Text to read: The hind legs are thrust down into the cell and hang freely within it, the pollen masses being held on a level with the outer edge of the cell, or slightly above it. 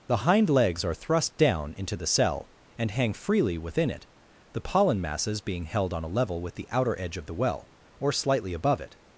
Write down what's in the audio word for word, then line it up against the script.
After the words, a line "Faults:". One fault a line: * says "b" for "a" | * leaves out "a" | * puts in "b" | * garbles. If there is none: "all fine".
The hind legs are thrust down into the cell and hang freely within it, the pollen masses being held on a level with the outer edge of the well, or slightly above it.
Faults:
* says "well" for "cell"